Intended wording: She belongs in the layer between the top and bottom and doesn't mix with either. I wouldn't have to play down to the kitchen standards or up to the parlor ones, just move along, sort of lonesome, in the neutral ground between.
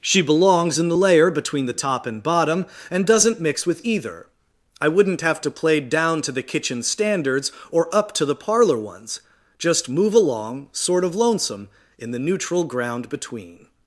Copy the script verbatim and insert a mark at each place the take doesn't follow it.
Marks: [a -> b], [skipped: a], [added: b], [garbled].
She belongs in the layer between the top and bottom and doesn't mix with either. I wouldn't have to play down to the kitchen standards or up to the parlor ones, just move along, sort of lonesome, in the neutral ground between.